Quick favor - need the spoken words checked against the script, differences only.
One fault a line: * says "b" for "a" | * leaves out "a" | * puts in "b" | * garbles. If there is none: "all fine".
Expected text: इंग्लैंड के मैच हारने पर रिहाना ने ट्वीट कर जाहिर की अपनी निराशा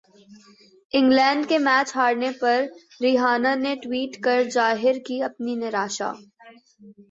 all fine